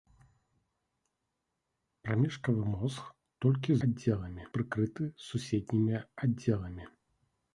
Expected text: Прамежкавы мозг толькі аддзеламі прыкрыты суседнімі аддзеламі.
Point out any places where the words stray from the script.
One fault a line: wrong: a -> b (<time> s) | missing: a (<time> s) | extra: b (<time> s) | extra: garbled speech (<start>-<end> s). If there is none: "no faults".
no faults